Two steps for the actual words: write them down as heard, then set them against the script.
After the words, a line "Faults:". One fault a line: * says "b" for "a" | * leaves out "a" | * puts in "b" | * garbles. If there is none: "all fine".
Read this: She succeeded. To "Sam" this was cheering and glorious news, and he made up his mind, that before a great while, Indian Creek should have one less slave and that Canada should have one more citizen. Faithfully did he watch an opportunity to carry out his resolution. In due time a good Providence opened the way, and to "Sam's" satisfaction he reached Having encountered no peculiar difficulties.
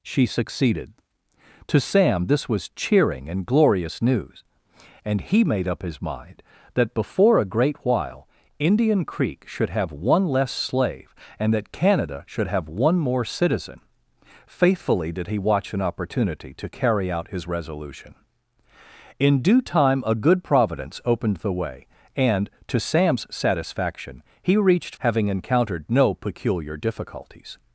She succeeded. To "Sam" this was cheering and glorious news, and he made up his mind, that before a great while, Indian Creek should have one less slave and that Canada should have one more citizen. Faithfully did he watch an opportunity to carry out his resolution. In due time a good Providence opened the way, and to "Sam's" satisfaction he reached Having encountered no peculiar difficulties.
Faults:
all fine